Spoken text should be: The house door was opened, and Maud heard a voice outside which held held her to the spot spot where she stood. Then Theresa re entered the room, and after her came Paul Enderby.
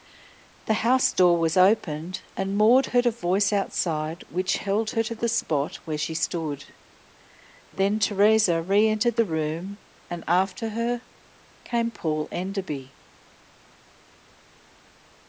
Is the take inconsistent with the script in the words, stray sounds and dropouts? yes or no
yes